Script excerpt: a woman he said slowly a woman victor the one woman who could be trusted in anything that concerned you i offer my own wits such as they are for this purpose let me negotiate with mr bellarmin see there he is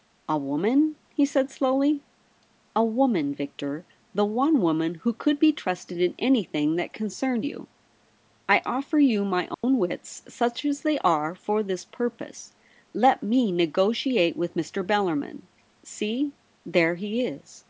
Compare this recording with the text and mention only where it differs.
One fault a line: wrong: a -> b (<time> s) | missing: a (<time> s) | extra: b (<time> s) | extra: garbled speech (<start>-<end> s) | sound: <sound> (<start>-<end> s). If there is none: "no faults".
extra: you (9.0 s)
sound: dropout (9.5-9.6 s)